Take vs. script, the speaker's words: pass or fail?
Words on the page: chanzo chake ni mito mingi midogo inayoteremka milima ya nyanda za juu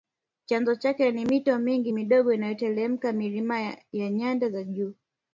pass